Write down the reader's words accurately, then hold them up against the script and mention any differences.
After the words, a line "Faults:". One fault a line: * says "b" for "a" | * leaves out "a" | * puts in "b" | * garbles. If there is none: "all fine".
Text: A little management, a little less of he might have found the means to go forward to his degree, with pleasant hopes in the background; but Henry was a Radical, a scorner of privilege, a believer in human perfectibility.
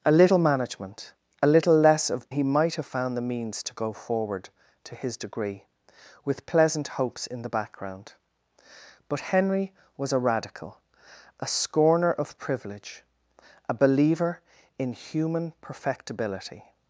A little management, a little less of he might have found the means to go forward to his degree, with pleasant hopes in the background; but Henry was a Radical, a scorner of privilege, a believer in human perfectibility.
Faults:
all fine